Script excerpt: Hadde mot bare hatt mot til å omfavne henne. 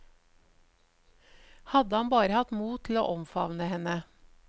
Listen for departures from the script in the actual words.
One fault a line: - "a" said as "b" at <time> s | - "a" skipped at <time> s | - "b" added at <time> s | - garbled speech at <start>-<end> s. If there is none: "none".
- "mot" said as "han" at 1.9 s